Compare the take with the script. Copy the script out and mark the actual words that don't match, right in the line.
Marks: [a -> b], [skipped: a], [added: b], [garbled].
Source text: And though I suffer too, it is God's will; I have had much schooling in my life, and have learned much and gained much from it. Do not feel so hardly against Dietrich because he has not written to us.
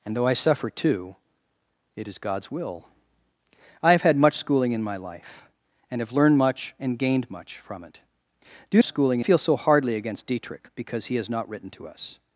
And though I suffer too, it is God's will; I have had much schooling in my life, and have learned much and gained much from it. Do [not -> schooling] feel so hardly against Dietrich because he has not written to us.